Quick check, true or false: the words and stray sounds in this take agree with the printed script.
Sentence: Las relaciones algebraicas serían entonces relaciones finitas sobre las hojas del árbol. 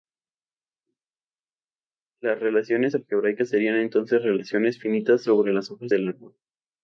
true